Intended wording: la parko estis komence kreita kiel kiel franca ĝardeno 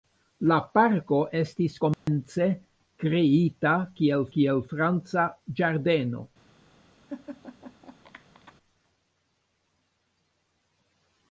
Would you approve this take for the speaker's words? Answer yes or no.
yes